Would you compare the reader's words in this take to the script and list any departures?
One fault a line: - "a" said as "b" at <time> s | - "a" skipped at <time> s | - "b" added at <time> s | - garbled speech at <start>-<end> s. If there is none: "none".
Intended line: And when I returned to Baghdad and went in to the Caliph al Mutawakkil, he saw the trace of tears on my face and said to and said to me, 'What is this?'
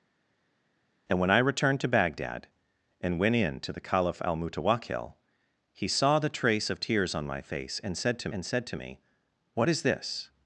none